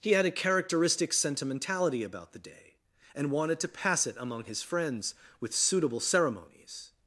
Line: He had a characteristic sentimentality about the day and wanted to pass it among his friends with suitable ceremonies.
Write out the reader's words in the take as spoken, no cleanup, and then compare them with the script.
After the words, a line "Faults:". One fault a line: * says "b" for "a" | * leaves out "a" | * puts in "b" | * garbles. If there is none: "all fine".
He had a characteristic sentimentality about the day and wanted to pass it among his friends with suitable ceremonies.
Faults:
all fine